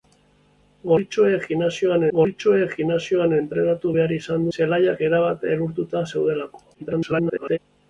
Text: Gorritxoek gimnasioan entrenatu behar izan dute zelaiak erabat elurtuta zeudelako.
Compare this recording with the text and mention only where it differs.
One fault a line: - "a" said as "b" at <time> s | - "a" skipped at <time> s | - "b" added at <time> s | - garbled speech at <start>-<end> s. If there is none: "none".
- "gorritxoek gimnasioan" added at 2.2 s
- "dute" skipped at 4.5 s
- garbled speech at 6.7-7.6 s